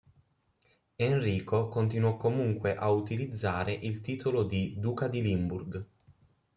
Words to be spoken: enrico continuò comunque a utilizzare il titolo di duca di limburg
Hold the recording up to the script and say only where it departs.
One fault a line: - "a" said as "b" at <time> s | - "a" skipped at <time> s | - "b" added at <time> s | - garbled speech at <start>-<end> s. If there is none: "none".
none